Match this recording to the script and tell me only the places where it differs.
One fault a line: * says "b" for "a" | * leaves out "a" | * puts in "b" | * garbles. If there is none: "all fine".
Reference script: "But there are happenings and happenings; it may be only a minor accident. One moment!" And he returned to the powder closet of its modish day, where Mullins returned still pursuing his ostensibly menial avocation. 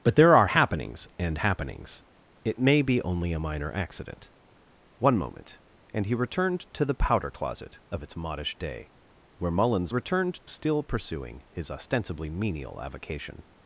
all fine